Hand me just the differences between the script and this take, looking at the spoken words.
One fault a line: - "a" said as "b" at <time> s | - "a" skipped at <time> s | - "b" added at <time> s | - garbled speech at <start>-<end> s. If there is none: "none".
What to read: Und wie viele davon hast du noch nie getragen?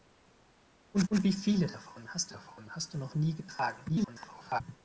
- "und" added at 1.1 s
- "davon hast" added at 2.3 s
- garbled speech at 3.9-4.6 s